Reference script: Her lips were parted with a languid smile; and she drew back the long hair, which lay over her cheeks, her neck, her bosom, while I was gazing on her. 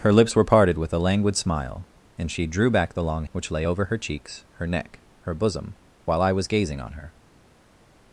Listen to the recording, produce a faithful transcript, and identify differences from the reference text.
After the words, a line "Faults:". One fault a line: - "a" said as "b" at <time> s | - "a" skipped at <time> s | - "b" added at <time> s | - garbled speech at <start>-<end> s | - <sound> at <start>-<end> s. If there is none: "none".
Her lips were parted with a languid smile; and she drew back the long which lay over her cheeks, her neck, her bosom, while I was gazing on her.
Faults:
- "hair" skipped at 3.2 s